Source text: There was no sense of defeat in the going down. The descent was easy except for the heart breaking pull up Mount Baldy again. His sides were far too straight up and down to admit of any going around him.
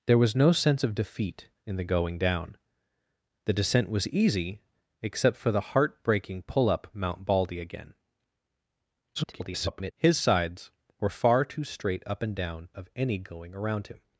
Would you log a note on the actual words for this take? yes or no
yes